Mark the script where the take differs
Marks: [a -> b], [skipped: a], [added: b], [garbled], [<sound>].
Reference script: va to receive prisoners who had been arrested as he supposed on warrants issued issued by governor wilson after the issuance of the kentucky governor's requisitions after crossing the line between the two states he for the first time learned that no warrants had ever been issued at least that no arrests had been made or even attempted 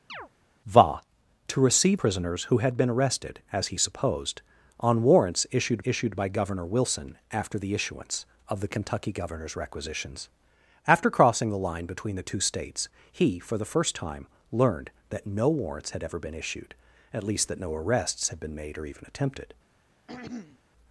[chirp] va to receive prisoners who had been arrested as he supposed on warrants issued issued by governor wilson after the issuance of the kentucky governor's requisitions after crossing the line between the two states he for the first time learned that no warrants had ever been issued at least that no arrests had been made or even attempted [throat clearing]